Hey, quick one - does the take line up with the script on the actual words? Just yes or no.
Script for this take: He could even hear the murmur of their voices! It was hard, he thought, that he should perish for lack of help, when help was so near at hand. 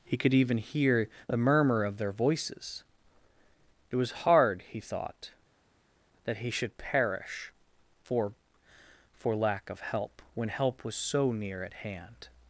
no